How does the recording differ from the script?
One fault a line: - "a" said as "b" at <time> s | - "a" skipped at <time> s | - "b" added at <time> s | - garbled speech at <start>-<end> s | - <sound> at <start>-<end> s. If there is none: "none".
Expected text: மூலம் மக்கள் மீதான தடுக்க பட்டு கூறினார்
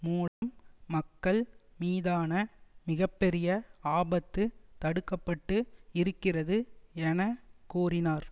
- dropout at 0.3-0.4 s
- "மிக பெரிய ஆபத்து" added at 2.9 s
- "இருக்கிறது என" added at 5.9 s